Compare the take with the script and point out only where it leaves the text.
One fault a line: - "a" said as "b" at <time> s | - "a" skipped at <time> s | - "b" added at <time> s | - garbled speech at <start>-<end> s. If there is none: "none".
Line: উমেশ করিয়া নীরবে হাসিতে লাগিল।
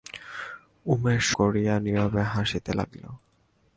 none